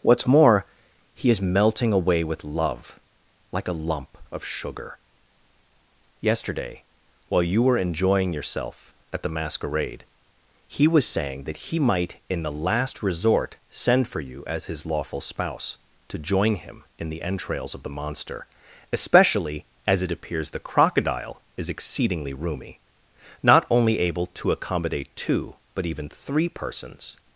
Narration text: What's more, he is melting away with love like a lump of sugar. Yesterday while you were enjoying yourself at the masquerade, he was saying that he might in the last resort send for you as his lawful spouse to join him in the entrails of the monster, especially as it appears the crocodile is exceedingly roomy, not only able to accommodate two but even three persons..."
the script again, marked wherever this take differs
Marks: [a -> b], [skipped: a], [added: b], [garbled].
What's more, he is melting away with love like a lump of sugar. Yesterday while you were enjoying yourself at the masquerade, he was saying that he might in the last resort send for you as his lawful spouse to join him in the entrails of the monster, especially as it appears the crocodile is exceedingly roomy, not only able to accommodate two but even three persons..."